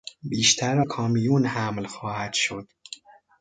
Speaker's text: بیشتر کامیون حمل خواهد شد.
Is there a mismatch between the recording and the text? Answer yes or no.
no